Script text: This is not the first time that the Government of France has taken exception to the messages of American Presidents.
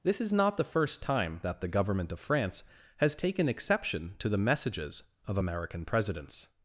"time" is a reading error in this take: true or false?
false